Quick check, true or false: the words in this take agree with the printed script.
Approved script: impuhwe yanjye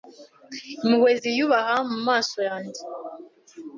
false